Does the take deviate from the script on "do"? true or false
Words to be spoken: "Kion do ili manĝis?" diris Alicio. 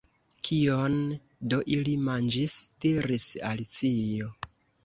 false